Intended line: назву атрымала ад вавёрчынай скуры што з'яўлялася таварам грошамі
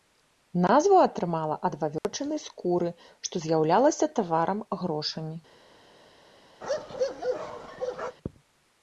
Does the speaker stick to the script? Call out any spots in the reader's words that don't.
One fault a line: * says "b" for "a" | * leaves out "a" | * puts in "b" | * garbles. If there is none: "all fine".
all fine